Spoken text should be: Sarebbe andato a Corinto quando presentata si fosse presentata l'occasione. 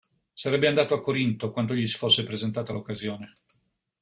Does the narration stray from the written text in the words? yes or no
yes